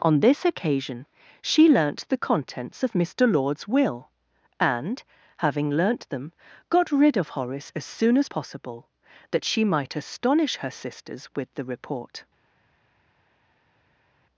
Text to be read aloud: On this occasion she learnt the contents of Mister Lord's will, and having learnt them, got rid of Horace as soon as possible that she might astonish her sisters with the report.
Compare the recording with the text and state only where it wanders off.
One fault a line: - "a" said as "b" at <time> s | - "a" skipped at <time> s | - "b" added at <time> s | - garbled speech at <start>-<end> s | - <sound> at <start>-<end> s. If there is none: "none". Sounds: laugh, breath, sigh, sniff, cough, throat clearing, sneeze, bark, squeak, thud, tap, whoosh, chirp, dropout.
none